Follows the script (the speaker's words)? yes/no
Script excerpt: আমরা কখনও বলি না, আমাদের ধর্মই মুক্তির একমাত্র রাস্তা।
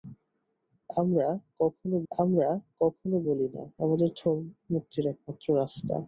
no